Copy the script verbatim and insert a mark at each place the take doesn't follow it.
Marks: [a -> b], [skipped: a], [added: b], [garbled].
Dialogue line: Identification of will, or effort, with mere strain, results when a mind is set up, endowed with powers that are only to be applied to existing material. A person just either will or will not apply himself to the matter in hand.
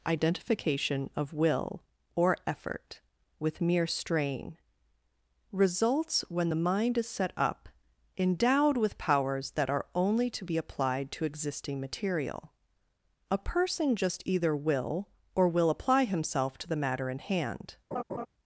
Identification of will, or effort, with mere strain, results when [a -> the] mind is set up, endowed with powers that are only to be applied to existing material. A person just either will or will [skipped: not] apply himself to the matter in hand.